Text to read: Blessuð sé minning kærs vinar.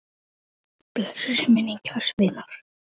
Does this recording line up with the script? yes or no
yes